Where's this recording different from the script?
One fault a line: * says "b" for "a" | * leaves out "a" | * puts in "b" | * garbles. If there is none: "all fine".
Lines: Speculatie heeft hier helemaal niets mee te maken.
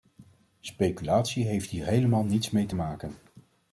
all fine